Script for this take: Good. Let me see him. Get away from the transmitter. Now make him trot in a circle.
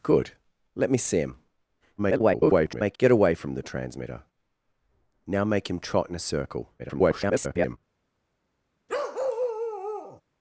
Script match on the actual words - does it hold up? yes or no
no